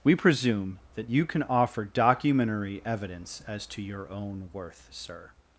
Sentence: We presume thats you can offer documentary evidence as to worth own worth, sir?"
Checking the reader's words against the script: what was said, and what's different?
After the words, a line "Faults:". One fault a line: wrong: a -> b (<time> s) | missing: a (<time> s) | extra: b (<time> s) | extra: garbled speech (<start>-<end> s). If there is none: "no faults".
We presume that you can offer documentary evidence as to your own worth, sir?"
Faults:
wrong: thats -> that (0.9 s)
wrong: worth -> your (3.8 s)